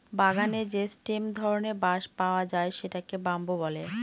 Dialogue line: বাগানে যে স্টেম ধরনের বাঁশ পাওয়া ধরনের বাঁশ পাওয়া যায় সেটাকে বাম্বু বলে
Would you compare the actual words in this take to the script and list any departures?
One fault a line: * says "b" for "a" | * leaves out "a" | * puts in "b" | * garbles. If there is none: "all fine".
* leaves out "ধরনের বাঁশ পাওয়া"